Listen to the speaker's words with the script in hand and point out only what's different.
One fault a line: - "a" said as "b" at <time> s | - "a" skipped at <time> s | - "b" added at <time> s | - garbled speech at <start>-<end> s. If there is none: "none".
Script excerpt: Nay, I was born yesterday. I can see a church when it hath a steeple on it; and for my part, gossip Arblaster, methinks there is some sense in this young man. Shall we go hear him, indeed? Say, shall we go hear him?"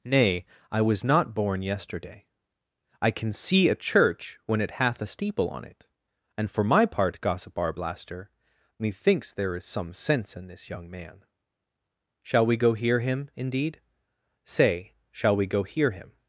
- "not" added at 1.0 s